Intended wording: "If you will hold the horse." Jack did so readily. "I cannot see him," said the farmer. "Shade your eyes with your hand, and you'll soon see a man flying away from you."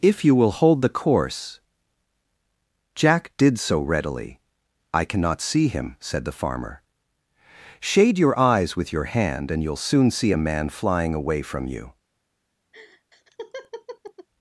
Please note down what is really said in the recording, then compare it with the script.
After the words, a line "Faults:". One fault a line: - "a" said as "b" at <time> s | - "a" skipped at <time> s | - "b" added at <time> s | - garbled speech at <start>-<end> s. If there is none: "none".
"If you will hold the course." Jack did so readily. "I cannot see him," said the farmer. "Shade your eyes with your hand, and you'll soon see a man flying away from you."
Faults:
- "horse" said as "course" at 0.9 s